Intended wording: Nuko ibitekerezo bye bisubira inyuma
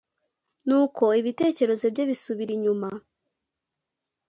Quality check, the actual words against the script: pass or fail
pass